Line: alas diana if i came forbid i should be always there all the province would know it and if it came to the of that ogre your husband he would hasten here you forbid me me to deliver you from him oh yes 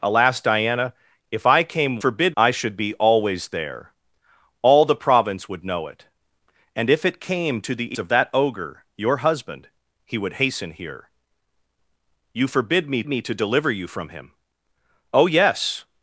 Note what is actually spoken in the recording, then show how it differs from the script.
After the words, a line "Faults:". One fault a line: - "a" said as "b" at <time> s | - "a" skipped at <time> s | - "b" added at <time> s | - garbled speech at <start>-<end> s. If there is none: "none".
alas diana if i came forbid i should be always there all the province would know it and if it came to the of that ogre your husband he would hasten here you forbid me me to deliver you from him oh yes
Faults:
none